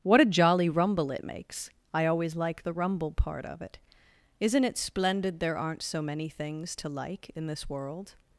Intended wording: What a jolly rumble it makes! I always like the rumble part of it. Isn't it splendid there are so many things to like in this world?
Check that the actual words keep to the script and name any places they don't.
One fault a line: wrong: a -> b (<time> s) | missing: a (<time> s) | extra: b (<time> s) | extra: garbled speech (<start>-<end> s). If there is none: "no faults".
wrong: are -> aren't (5.6 s)